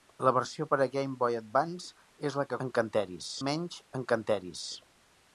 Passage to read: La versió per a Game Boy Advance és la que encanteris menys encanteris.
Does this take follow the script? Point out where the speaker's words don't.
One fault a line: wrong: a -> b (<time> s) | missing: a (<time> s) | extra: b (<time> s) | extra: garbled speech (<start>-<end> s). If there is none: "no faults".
no faults